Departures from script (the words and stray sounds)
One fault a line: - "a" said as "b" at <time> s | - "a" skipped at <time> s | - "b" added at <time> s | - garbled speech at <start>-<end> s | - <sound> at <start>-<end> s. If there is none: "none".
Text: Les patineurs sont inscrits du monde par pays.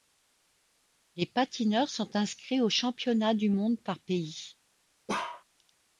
- "aux championnats" added at 2.6 s
- bark at 5.1-5.4 s